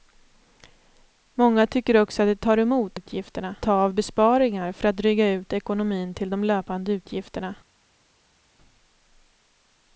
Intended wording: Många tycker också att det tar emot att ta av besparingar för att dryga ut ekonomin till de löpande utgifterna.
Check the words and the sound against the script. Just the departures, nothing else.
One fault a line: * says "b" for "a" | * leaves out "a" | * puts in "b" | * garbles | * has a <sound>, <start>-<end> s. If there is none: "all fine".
* says "utgifterna" for "att"